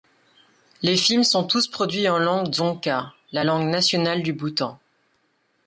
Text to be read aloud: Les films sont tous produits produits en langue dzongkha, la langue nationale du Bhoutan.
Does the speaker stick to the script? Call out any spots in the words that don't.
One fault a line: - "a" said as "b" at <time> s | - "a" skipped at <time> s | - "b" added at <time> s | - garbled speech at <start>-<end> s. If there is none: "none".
- "produits" skipped at 2.1 s